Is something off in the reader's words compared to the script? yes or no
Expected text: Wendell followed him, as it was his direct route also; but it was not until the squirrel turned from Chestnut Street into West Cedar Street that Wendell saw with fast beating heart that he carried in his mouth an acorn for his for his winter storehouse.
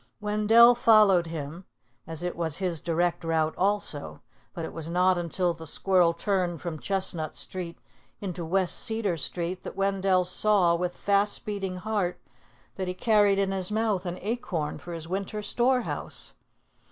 yes